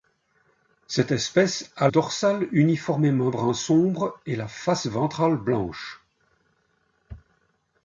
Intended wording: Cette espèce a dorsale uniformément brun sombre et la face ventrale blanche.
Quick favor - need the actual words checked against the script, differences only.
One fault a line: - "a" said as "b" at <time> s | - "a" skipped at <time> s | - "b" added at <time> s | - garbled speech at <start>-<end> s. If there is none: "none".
none